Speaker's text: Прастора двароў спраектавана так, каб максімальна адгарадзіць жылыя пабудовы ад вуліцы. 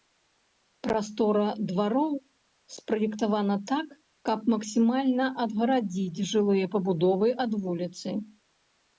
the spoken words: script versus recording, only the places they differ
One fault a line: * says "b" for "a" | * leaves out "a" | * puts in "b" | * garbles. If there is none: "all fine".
all fine